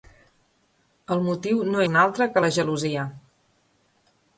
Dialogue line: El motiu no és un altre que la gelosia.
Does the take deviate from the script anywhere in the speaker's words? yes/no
yes